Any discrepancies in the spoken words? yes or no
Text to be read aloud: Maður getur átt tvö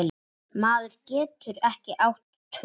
yes